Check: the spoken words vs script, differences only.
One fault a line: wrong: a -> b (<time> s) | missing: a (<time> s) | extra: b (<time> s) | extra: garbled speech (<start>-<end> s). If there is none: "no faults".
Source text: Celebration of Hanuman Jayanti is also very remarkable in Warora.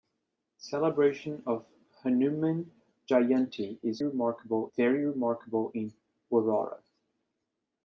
wrong: also -> remarkable (4.0 s)